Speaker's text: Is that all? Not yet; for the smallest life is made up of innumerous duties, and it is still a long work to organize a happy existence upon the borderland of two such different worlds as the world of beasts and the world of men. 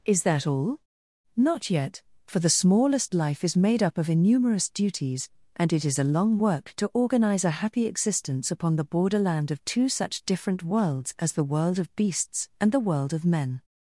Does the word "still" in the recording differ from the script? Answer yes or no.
yes